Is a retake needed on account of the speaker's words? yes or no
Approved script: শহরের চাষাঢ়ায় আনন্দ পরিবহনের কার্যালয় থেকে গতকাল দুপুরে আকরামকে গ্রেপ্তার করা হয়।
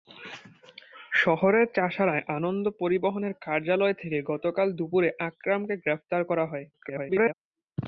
yes